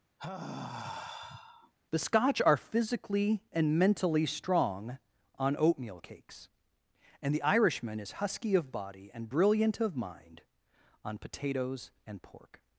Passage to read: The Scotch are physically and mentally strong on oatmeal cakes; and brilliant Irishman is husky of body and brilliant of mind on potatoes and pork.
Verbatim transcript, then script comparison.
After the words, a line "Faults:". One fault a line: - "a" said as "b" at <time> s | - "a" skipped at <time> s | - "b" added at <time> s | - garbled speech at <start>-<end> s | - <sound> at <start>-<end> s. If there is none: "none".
The Scotch are physically and mentally strong on oatmeal cakes; and the Irishman is husky of body and brilliant of mind on potatoes and pork.
Faults:
- sigh at 0.2-1.7 s
- "brilliant" said as "the" at 7.3 s